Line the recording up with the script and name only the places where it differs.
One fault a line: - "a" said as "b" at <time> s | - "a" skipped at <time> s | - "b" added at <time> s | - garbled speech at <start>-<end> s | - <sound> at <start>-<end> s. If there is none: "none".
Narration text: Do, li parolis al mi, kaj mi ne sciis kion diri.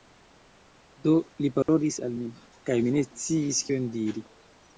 - dropout at 1.6-1.7 s